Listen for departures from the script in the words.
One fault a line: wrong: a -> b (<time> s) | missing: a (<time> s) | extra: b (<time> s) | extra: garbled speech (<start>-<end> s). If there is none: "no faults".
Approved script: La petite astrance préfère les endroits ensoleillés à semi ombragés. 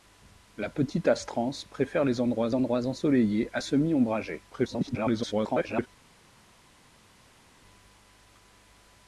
extra: endroits (2.5 s)
extra: garbled speech (4.5-5.9 s)